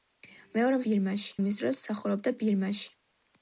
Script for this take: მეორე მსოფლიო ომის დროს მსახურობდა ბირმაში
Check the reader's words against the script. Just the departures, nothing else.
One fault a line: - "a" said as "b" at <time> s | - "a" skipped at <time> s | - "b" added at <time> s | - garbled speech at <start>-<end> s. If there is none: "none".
- "მსოფლიო" said as "ბირმაში" at 0.9 s